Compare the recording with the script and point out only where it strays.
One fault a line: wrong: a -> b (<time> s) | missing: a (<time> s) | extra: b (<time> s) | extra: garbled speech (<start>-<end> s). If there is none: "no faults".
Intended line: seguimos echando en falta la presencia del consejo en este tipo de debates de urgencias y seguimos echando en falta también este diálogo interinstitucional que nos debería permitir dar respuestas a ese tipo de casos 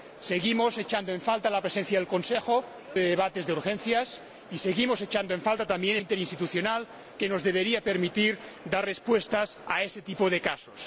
missing: en este tipo (2.6 s)
missing: este diálogo (6.0 s)